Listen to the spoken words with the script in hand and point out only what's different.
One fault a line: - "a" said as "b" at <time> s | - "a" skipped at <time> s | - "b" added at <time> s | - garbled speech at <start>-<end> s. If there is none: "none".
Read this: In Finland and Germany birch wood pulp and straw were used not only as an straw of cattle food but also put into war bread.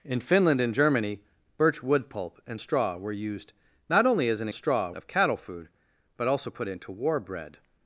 none